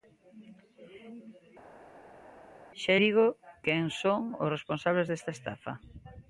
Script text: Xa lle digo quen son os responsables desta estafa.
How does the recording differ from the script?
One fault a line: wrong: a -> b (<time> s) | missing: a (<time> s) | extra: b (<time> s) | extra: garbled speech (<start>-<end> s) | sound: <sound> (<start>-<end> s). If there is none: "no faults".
missing: lle (2.9 s)